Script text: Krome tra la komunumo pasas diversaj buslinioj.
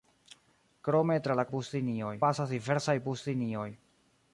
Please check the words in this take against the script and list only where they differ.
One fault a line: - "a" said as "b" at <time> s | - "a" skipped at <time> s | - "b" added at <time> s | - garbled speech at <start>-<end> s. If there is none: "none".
- "komunumo" said as "buslinioj" at 1.6 s